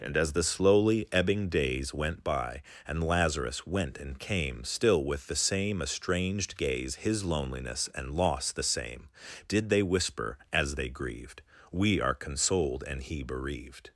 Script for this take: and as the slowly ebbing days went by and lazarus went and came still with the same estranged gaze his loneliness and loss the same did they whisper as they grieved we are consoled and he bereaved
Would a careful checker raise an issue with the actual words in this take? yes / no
no